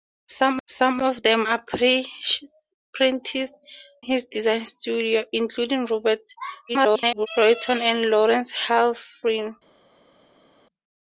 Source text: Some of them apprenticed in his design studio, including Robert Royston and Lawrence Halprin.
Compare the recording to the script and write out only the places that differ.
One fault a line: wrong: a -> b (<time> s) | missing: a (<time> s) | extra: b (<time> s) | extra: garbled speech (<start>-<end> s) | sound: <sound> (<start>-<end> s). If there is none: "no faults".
extra: some (0.7 s)
missing: in (2.4 s)
extra: garbled speech (6.7-7.3 s)